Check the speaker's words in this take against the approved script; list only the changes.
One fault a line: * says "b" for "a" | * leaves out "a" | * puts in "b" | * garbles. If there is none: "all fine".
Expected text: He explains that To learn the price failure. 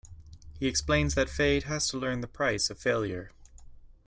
* puts in "Feyd has"
* puts in "of"